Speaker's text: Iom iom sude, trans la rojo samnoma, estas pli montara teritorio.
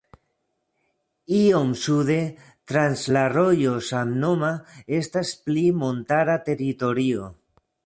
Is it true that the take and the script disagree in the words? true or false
true